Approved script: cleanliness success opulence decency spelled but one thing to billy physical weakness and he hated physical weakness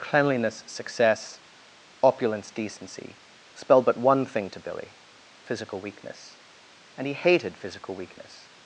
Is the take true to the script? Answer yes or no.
yes